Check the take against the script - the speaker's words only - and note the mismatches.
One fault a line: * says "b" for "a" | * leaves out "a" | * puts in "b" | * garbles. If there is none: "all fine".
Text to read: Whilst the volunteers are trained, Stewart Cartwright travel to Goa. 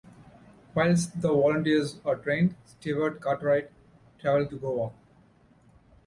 all fine